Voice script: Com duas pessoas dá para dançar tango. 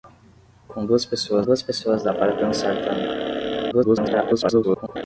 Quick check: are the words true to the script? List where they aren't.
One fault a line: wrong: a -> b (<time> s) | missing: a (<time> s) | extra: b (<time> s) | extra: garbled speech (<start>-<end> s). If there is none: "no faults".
extra: duas pessoas (1.4 s)
extra: garbled speech (3.7-5.0 s)